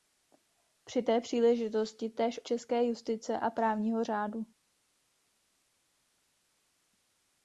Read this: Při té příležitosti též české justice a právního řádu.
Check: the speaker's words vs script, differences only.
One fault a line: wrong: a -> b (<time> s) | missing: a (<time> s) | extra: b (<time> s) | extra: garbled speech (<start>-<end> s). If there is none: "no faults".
no faults